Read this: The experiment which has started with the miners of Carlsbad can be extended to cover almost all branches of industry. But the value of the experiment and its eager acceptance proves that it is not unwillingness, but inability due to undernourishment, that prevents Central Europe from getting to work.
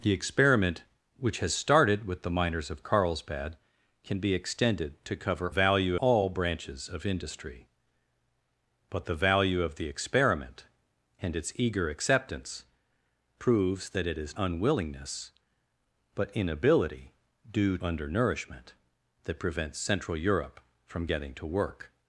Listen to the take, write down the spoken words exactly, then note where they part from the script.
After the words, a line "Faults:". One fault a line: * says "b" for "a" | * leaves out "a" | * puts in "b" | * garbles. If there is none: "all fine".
The experiment which has started with the miners of Carlsbad can be extended to cover value all branches of industry. But the value of the experiment and its eager acceptance proves that it is unwillingness, but inability due undernourishment, that prevents Central Europe from getting to work.
Faults:
* says "value" for "almost"
* leaves out "not"
* leaves out "to"